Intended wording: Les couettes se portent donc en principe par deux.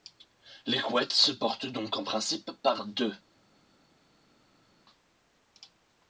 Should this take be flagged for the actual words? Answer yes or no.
no